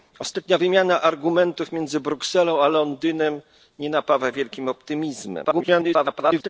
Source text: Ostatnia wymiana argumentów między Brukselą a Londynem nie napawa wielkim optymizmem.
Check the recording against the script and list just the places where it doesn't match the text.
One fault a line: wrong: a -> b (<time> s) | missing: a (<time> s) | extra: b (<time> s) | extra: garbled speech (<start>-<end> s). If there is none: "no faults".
extra: garbled speech (5.4-6.5 s)